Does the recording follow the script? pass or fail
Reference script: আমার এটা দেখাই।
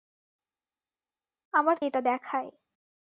pass